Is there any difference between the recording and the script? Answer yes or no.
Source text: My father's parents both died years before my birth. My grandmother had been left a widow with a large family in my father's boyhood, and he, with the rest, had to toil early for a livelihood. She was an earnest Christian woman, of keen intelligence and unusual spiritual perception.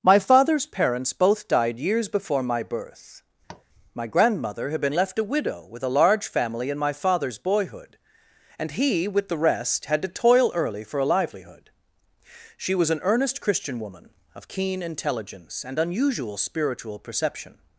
no